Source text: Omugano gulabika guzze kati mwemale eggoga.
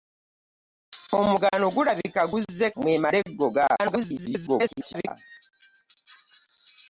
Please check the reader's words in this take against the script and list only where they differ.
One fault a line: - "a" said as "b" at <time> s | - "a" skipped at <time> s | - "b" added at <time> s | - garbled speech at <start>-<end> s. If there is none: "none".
- "kati" skipped at 2.7 s
- garbled speech at 3.8-5.1 s